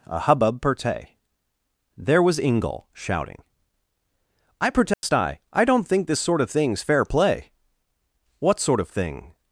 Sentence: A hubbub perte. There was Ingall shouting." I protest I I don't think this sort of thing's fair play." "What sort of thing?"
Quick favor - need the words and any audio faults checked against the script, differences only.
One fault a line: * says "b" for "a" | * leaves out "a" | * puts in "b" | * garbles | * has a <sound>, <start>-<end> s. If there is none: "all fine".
* has a dropout, 4.9-5.0 s